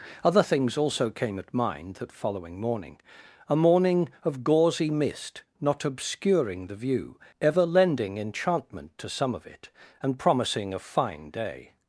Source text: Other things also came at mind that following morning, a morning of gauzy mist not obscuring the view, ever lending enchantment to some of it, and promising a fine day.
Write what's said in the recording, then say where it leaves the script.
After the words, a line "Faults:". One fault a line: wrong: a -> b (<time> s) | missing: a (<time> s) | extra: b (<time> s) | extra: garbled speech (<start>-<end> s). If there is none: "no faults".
Other things also came at mind that following morning, a morning of gauzy mist not obscuring the view, ever lending enchantment to some of it, and promising a fine day.
Faults:
no faults